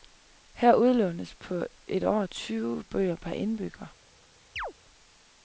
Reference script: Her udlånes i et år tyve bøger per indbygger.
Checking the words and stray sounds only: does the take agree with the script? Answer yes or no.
no